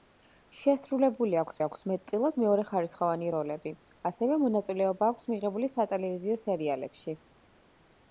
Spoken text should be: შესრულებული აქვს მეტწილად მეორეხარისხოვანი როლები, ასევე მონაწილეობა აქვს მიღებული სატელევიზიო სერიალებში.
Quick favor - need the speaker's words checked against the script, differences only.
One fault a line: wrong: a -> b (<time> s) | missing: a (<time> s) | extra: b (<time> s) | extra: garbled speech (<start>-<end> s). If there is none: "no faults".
extra: აქვს (1.7 s)